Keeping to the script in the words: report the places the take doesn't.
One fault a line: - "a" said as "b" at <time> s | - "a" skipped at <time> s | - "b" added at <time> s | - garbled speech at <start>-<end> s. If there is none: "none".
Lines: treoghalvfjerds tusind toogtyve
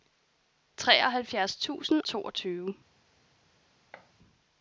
none